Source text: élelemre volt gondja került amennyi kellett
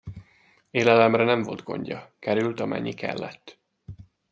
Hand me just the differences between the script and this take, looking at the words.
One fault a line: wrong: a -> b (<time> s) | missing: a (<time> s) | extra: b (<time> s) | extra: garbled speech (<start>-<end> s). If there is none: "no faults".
extra: nem (1.2 s)